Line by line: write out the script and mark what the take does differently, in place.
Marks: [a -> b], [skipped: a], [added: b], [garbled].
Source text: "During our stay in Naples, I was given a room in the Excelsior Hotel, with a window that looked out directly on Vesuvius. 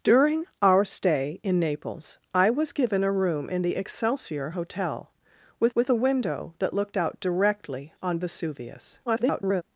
"During our stay in Naples, I was given a room in the Excelsior Hotel, with [added: with] a window that looked out directly on Vesuvius. [garbled]